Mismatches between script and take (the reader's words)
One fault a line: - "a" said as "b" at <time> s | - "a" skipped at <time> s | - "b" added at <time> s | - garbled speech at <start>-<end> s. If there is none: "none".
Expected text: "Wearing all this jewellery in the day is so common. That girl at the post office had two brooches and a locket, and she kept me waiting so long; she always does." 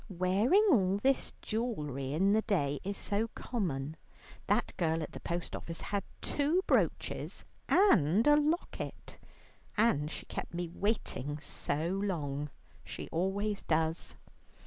none